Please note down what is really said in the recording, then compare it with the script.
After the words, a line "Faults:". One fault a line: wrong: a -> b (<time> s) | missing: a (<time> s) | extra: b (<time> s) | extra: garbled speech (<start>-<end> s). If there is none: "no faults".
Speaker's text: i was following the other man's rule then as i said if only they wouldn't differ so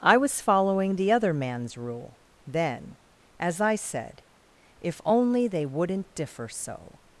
i was following the other man's rule then as i said if only they wouldn't differ so
Faults:
no faults